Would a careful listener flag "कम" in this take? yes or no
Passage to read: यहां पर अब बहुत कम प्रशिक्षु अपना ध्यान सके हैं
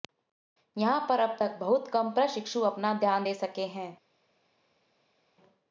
no